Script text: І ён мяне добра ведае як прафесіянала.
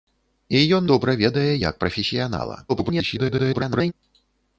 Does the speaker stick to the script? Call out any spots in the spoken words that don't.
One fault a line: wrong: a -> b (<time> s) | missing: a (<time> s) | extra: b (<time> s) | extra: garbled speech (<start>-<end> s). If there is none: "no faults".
missing: мяне (0.9 s)
extra: garbled speech (2.7-3.9 s)